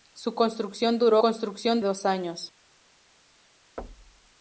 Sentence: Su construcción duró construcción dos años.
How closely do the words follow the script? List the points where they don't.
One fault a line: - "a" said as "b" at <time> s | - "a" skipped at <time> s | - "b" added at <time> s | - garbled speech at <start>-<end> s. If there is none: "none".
none